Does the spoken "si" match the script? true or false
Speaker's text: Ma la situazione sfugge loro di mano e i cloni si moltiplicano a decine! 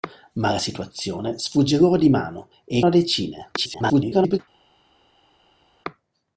false